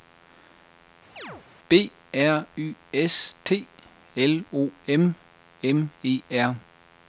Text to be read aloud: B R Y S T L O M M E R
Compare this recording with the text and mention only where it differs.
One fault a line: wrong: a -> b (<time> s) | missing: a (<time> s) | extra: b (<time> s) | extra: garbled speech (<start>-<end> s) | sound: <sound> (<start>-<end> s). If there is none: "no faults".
sound: chirp (1.2-1.5 s)